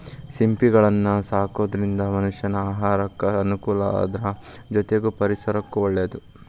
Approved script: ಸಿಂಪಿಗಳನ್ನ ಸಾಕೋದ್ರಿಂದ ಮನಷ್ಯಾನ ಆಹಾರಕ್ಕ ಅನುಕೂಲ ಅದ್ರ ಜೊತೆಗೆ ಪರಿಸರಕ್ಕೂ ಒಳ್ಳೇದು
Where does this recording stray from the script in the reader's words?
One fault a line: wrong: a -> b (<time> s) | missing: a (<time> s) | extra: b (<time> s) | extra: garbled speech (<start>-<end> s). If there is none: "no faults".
no faults